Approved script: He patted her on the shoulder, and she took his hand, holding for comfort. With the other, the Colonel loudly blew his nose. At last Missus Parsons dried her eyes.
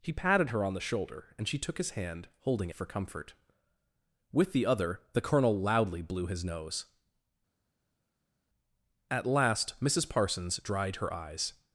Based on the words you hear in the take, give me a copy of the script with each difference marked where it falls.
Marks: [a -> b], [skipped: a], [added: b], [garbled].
He patted her on the shoulder, and she took his hand, holding for comfort. With the other, the Colonel loudly blew his nose. At last Missus Parsons dried her eyes.